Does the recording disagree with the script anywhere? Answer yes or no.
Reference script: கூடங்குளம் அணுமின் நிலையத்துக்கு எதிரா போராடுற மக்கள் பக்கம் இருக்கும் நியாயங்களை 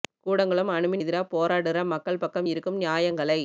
yes